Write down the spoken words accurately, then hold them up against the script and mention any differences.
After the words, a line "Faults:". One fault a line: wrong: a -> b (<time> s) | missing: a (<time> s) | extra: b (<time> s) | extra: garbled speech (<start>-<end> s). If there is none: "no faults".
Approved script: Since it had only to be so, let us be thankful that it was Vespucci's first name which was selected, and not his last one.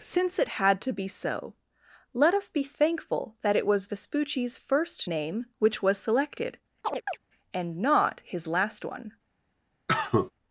Since it had to be so, let us be thankful that it was Vespucci's first name which was selected, and not his last one.
Faults:
missing: only (0.8 s)